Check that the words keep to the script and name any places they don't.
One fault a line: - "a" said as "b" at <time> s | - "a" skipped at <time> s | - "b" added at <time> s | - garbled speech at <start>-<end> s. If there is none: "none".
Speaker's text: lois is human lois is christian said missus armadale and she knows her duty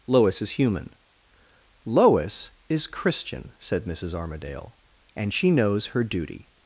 none